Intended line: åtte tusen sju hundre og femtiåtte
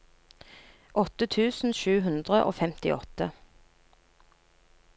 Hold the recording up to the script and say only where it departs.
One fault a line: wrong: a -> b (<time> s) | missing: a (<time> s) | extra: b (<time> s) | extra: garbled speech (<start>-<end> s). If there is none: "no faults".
no faults